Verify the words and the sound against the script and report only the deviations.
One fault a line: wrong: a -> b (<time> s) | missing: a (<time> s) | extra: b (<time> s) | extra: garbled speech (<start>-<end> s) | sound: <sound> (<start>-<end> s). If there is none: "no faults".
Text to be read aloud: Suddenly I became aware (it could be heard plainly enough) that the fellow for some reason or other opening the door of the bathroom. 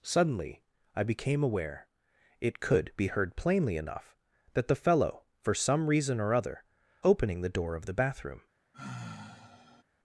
sound: sigh (8.7-9.8 s)